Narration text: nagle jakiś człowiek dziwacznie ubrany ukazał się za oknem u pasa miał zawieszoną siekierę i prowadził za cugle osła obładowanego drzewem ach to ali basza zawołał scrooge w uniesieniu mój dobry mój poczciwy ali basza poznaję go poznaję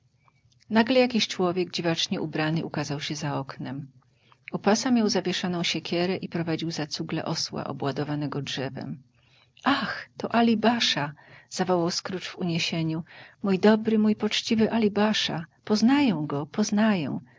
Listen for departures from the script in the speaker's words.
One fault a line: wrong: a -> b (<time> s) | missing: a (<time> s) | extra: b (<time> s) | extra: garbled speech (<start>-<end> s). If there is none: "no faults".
no faults